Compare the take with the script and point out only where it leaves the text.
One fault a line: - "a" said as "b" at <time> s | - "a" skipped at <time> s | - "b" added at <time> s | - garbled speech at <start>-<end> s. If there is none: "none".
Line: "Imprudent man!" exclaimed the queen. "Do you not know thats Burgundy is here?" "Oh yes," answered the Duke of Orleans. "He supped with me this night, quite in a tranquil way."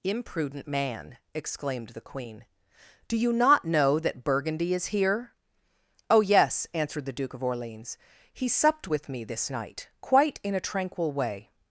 - "thats" said as "that" at 4.0 s